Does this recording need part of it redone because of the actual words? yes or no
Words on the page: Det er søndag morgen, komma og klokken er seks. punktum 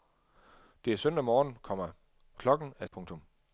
yes